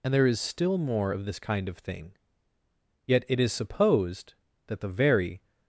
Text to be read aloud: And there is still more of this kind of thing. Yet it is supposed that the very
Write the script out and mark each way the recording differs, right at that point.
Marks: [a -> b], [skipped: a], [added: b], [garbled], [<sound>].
And there is still more of this kind of thing. Yet it is supposed that the very